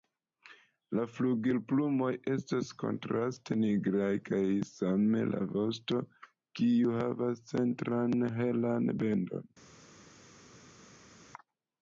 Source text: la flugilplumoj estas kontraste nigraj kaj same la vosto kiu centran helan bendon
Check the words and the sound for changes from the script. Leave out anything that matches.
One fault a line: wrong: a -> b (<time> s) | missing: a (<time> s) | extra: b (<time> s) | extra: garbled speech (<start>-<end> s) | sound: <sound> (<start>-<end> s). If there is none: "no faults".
extra: havas (7.0 s)